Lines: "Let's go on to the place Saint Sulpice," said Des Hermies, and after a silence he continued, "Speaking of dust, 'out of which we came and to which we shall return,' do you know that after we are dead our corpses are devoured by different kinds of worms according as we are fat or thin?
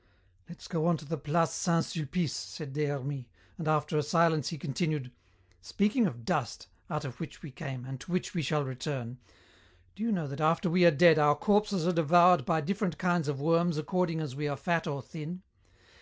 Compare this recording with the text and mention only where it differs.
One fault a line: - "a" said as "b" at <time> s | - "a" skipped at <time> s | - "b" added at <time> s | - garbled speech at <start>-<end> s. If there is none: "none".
none